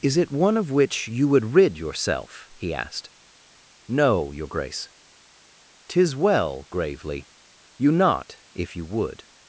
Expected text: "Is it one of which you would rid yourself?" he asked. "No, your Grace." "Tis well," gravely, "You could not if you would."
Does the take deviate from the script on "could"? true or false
true